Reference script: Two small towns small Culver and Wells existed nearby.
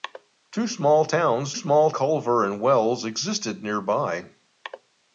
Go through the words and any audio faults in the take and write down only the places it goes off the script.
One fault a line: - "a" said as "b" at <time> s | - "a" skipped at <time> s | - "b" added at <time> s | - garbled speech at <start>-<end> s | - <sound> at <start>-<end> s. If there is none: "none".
none